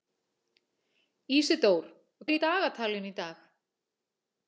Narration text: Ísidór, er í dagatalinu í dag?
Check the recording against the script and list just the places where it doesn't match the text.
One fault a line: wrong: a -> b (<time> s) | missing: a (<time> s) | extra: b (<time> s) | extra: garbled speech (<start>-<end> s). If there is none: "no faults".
no faults